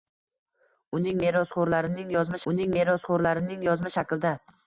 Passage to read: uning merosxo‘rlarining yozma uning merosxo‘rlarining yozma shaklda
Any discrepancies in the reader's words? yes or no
no